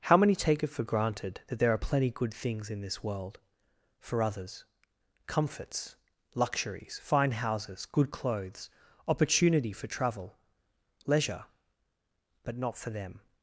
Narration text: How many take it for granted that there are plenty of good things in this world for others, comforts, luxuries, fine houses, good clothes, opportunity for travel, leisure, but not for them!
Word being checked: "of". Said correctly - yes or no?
no